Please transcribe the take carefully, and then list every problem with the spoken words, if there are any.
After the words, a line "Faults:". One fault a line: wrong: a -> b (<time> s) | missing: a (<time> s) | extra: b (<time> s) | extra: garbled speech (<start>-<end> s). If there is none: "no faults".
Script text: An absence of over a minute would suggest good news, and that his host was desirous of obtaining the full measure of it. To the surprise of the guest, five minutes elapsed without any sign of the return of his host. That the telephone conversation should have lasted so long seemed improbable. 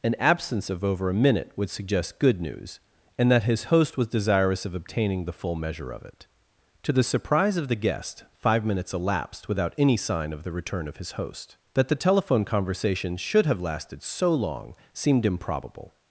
An absence of over a minute would suggest good news, and that his host was desirous of obtaining the full measure of it. To the surprise of the guest, five minutes elapsed without any sign of the return of his host. That the telephone conversation should have lasted so long seemed improbable.
Faults:
no faults